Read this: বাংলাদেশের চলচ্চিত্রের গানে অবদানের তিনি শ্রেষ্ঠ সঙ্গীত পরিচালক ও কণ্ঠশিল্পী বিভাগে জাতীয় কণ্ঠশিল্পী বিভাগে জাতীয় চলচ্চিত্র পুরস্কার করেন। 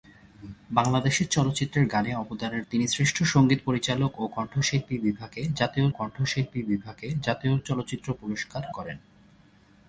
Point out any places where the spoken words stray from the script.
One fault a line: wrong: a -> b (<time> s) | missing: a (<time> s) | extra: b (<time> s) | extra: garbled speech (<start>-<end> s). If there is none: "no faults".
no faults